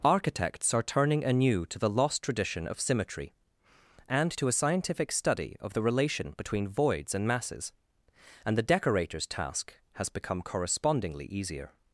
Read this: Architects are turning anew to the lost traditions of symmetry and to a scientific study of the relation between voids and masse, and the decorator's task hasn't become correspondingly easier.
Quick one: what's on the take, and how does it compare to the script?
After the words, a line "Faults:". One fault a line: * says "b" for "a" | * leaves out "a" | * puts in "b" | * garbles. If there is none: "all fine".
Architects are turning anew to the lost tradition of symmetry and to a scientific study of the relation between voids and masses, and the decorator's task has become correspondingly easier.
Faults:
* says "tradition" for "traditions"
* says "masses" for "masse"
* says "has" for "hasn't"